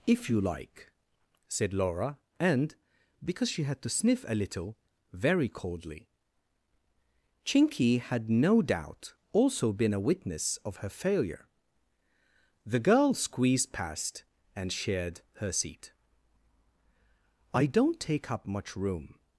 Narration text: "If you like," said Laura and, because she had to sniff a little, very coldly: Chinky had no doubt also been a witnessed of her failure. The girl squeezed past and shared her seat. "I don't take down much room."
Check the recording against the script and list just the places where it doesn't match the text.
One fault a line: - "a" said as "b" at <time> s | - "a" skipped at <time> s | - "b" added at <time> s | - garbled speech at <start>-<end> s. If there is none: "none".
- "witnessed" said as "witness" at 10.0 s
- "down" said as "up" at 18.3 s